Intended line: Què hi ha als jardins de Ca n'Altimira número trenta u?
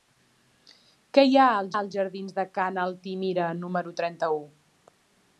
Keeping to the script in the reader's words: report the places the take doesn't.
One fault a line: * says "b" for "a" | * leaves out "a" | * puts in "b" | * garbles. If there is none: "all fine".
* puts in "als"